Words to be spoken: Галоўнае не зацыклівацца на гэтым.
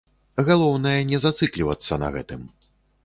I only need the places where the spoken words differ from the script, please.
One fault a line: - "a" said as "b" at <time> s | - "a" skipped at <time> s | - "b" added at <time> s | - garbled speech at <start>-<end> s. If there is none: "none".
none